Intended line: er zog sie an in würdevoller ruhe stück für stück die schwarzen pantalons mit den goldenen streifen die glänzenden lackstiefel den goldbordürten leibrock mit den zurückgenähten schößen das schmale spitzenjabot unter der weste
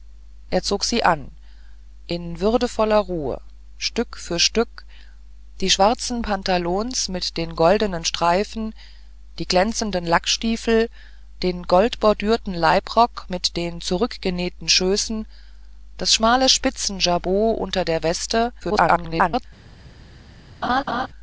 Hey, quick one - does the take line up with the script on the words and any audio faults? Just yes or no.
no